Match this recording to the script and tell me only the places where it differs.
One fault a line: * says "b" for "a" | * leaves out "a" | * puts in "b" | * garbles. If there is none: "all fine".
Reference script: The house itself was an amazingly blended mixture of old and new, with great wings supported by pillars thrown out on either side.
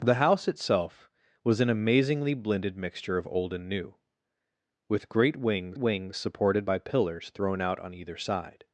* puts in "wings"